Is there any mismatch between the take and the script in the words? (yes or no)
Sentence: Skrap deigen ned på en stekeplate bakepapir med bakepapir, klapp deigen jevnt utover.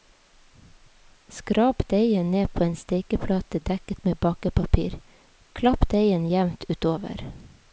yes